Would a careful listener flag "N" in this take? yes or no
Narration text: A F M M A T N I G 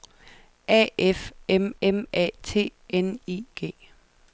no